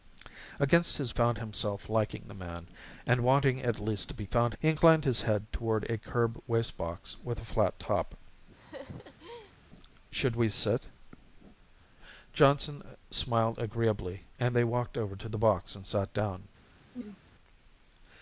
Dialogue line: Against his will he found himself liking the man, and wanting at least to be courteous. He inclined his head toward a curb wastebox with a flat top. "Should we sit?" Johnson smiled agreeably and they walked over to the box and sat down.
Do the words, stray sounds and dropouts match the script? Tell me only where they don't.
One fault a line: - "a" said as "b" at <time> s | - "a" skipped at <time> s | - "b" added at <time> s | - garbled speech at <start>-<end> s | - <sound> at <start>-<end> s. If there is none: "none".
- "will he" skipped at 1.1 s
- "courteous" said as "found" at 4.2 s
- laugh at 8.6-9.6 s
- throat clearing at 16.9-17.2 s